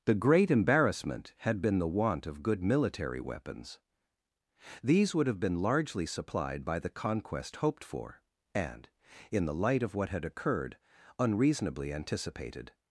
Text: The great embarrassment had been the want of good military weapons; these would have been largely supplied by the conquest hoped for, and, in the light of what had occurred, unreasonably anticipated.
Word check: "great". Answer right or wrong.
right